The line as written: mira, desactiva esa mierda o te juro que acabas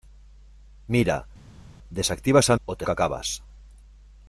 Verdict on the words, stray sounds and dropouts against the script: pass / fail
fail